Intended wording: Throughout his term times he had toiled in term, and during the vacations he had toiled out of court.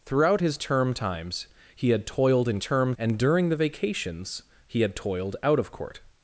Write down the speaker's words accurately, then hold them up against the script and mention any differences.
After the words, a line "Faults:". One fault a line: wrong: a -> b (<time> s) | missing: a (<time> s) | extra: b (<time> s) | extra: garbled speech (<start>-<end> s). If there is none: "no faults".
Throughout his term times he had toiled in term, and during the vacations he had toiled out of court.
Faults:
no faults